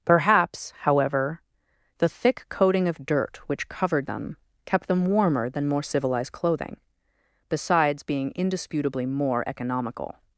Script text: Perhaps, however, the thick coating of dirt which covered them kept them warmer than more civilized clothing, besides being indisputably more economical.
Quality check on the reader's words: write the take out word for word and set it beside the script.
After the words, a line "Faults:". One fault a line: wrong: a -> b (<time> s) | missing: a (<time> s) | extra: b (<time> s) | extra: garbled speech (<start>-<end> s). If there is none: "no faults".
Perhaps, however, the thick coating of dirt which covered them kept them warmer than more civilized clothing, besides being indisputably more economical.
Faults:
no faults